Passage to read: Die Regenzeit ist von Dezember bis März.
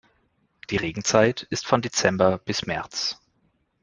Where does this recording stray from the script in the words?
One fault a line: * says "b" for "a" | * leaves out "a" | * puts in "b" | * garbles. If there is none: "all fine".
all fine